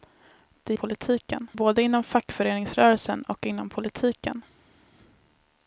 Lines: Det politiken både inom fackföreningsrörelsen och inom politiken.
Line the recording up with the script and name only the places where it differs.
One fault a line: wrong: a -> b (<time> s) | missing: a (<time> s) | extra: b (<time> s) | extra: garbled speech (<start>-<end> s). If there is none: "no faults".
no faults